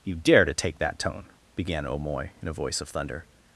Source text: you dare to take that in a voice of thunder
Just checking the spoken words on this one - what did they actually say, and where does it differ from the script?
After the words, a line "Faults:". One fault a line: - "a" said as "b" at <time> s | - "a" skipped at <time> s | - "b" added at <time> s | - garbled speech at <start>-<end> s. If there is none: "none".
you dare to take that tone began o'moy in a voice of thunder
Faults:
- "tone began o'moy" added at 1.0 s